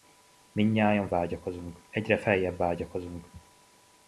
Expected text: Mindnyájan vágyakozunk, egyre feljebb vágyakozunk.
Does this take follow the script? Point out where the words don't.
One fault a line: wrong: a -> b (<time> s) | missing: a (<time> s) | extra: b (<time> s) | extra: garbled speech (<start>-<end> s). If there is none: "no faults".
no faults